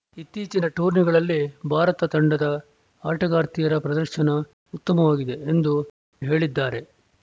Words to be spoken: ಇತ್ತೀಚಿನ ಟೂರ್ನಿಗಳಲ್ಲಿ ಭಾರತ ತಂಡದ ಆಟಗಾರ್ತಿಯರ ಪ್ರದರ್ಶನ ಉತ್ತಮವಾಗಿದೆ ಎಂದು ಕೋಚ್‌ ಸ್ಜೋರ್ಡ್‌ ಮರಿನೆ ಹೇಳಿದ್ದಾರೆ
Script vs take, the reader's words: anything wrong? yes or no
yes